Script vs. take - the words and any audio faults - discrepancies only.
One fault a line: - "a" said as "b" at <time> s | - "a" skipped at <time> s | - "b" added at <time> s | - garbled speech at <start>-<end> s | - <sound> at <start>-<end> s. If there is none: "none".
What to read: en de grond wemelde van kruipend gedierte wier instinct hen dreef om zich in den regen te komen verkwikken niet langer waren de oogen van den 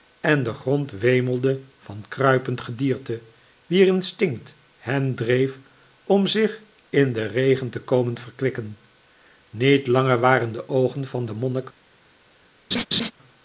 - laugh at 12.7-13.1 s